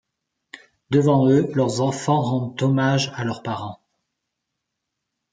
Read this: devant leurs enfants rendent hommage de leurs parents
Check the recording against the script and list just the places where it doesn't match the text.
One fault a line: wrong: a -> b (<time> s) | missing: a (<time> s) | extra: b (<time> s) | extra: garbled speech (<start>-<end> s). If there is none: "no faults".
extra: eux (1.3 s)
wrong: de -> à (3.1 s)